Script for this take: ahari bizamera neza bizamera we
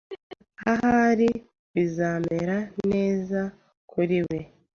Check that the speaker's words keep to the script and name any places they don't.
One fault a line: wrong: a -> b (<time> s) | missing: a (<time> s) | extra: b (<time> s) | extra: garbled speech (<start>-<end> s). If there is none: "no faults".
wrong: bizamera -> kuri (3.9 s)